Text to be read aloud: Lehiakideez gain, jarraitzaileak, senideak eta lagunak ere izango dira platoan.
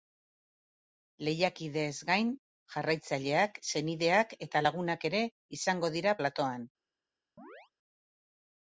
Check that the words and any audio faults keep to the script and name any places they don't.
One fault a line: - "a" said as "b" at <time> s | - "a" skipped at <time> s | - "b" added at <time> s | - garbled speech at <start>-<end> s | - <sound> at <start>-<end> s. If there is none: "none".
- chirp at 7.4-7.7 s